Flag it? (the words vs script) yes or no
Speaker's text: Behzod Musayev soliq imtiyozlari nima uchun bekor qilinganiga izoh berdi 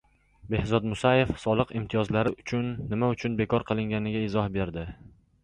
no